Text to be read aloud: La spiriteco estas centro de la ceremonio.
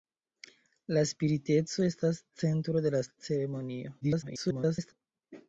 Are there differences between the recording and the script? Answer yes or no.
yes